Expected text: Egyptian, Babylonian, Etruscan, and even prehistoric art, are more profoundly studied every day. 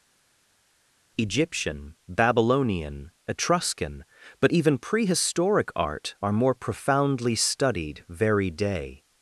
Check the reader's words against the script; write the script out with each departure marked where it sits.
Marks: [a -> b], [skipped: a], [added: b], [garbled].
Egyptian, Babylonian, Etruscan, [and -> but] even prehistoric art, are more profoundly studied [every -> very] day.